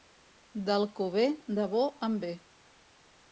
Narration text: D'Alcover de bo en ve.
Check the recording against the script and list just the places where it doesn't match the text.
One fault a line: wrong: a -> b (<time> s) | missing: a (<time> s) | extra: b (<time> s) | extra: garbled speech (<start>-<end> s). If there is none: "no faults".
no faults